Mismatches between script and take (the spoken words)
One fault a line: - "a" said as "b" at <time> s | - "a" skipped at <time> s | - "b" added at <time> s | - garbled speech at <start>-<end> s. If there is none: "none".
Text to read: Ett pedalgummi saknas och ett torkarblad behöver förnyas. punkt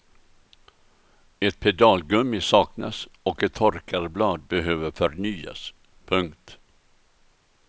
none